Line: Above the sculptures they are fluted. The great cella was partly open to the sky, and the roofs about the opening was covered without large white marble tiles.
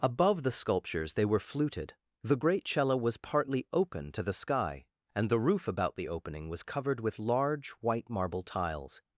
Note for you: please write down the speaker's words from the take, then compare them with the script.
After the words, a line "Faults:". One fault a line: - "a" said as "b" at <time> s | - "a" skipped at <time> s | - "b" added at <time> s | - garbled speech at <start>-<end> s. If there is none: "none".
Above the sculptures they were fluted. The great cella was partly open to the sky, and the roof about the opening was covered with large white marble tiles.
Faults:
- "are" said as "were" at 1.2 s
- "roofs" said as "roof" at 5.4 s
- "without" said as "with" at 7.0 s